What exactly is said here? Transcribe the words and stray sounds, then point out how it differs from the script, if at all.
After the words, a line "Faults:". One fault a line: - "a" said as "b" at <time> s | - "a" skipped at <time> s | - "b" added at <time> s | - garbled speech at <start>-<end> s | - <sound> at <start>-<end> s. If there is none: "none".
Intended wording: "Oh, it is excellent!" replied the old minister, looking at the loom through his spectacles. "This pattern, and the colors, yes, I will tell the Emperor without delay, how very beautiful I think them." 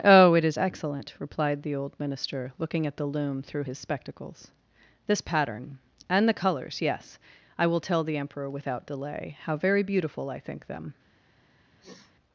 "Oh, it is excellent!" replied the old minister, looking at the loom through his spectacles. "This pattern, and the colors, yes, I will tell the Emperor without delay, how very beautiful I think them."
Faults:
- sniff at 11.8-12.1 s